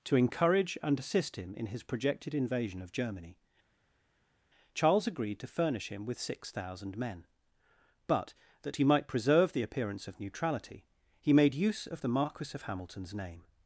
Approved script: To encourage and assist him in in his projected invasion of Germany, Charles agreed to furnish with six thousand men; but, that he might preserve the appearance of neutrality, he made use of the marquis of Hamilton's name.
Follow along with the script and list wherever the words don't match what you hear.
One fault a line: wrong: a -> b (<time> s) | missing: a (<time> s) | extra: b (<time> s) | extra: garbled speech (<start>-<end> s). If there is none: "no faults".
missing: in (1.7 s)
extra: him (5.9 s)